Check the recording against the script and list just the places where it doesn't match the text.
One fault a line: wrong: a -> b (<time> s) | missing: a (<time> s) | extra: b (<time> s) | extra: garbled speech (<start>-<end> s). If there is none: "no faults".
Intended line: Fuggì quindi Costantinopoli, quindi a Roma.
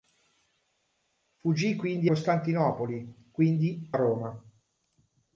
no faults